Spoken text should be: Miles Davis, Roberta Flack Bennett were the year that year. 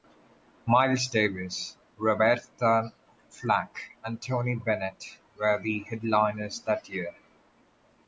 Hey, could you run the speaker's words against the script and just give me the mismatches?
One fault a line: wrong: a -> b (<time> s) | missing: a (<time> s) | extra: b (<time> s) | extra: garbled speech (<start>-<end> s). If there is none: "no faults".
extra: and Tony (4.0 s)
wrong: year -> headliners (5.8 s)